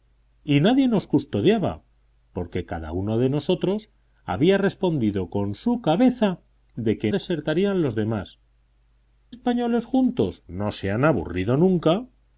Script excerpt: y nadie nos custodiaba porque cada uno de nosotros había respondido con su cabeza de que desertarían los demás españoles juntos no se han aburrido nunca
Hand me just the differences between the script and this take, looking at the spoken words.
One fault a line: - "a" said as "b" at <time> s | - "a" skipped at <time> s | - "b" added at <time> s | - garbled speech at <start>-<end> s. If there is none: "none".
none